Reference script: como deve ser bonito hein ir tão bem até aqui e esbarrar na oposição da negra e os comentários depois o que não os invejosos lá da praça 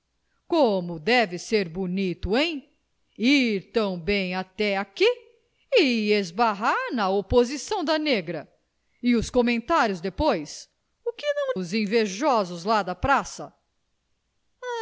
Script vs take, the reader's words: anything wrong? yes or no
no